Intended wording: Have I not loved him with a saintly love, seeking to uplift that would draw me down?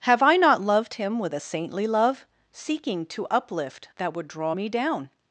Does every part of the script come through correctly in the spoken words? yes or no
yes